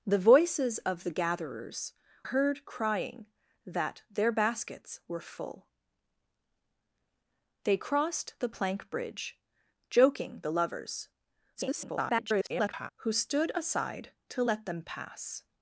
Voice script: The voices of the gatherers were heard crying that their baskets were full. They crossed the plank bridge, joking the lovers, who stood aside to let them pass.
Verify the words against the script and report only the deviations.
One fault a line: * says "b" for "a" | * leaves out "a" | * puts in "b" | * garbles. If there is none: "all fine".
* leaves out "were"
* garbles